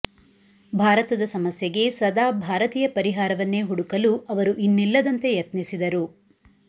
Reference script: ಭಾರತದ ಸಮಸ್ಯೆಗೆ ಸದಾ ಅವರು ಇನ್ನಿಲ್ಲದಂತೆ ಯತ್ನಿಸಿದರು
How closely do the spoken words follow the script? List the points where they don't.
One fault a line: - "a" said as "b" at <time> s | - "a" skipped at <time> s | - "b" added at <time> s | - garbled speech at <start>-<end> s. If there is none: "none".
- "ಭಾರತೀಯ ಪರಿಹಾರವನ್ನೇ ಹುಡುಕಲು" added at 2.4 s